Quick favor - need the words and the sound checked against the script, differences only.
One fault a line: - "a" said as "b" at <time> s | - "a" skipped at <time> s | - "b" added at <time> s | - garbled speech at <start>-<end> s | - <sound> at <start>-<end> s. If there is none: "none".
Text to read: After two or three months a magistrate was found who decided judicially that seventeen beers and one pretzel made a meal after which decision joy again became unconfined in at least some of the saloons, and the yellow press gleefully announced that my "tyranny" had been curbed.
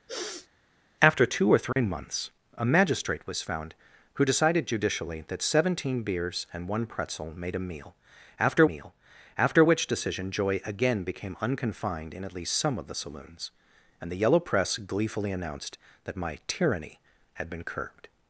- sniff at 0.1-0.5 s
- dropout at 1.7-1.8 s
- "meal after" added at 8.6 s